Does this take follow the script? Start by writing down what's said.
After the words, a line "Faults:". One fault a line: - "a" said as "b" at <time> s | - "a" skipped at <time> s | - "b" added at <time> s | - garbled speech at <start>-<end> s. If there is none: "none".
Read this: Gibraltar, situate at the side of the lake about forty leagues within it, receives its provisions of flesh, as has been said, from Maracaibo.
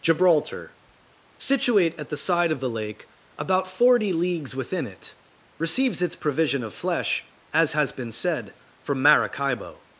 Gibraltar, situate at the side of the lake about forty leagues within it, receives its provision of flesh, as has been said, from Maracaibo.
Faults:
- "provisions" said as "provision" at 6.2 s